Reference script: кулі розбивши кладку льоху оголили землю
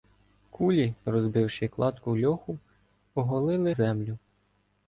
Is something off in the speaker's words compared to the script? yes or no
no